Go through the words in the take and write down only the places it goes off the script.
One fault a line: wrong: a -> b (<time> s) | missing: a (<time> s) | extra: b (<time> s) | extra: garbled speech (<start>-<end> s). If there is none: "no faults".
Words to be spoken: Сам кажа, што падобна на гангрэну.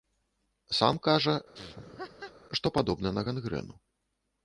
no faults